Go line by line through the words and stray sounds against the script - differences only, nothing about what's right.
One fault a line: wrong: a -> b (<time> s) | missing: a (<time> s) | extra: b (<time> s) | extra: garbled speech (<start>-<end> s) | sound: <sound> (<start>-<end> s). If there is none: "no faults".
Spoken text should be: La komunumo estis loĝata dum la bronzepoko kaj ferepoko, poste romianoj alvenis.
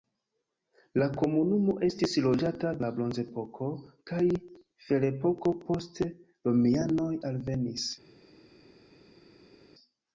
missing: dum (2.7 s)